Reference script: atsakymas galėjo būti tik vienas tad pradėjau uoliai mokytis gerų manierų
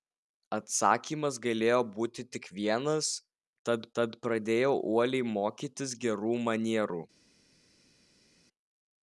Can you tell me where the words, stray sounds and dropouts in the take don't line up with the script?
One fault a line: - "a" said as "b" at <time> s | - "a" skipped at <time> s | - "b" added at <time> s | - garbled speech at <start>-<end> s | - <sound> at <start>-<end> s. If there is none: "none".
- "tad" added at 4.0 s